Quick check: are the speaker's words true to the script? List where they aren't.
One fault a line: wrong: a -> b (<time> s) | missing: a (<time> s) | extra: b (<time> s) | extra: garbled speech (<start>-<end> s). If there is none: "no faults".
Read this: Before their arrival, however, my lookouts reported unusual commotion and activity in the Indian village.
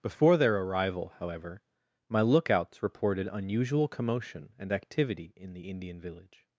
no faults